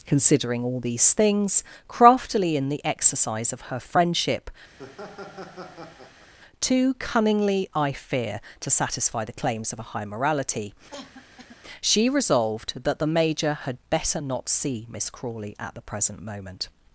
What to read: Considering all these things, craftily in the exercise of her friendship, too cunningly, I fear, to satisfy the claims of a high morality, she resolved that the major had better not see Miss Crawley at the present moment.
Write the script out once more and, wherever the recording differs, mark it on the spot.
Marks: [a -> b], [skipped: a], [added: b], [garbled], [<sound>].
Considering all these things, craftily in the exercise of her friendship, [laugh] too cunningly, I fear, to satisfy the claims of a high morality, [cough] she resolved that the major had better not see Miss Crawley at the present moment.